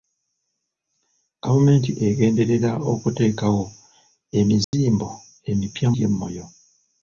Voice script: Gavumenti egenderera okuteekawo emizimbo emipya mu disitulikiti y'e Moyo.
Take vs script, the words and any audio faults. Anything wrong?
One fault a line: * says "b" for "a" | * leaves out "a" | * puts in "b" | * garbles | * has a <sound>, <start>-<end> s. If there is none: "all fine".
* has a dropout, 4.6-4.7 s
* leaves out "mu disitulikiti"